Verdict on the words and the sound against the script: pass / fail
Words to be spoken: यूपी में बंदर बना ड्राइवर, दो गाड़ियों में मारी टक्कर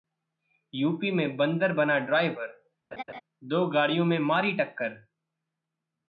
fail